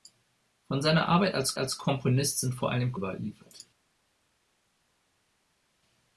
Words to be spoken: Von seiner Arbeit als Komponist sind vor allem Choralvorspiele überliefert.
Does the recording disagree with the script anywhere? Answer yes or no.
yes